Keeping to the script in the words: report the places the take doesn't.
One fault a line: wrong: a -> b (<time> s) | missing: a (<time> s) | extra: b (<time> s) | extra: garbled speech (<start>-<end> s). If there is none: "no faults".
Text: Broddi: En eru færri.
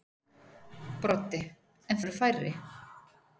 no faults